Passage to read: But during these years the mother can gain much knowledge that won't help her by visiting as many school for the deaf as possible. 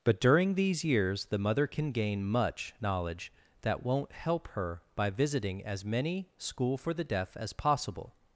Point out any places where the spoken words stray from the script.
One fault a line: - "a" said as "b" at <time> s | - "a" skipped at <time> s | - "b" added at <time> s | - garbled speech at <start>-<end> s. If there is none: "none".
none